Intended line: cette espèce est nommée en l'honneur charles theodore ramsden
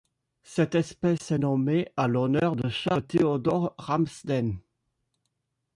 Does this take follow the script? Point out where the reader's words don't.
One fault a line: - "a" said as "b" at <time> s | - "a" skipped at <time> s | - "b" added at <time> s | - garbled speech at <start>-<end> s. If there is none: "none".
- "de" added at 2.5 s